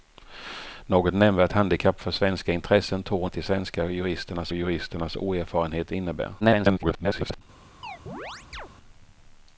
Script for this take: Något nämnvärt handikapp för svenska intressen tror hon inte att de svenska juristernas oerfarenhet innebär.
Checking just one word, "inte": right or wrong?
wrong